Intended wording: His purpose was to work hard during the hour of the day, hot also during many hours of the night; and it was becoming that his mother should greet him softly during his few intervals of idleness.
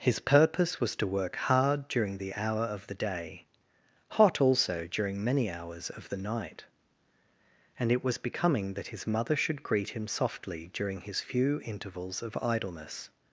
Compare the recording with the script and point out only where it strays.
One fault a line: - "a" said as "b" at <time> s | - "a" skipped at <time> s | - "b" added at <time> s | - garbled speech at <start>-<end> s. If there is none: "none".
none